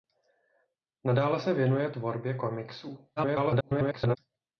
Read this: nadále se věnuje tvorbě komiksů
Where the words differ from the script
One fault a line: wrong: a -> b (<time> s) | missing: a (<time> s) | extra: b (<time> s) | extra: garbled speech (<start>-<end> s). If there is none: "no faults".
extra: garbled speech (3.2-4.2 s)